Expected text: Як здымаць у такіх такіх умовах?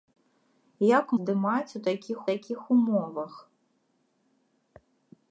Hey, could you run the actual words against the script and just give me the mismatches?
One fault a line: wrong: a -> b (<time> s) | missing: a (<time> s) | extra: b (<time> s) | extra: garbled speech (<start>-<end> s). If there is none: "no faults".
no faults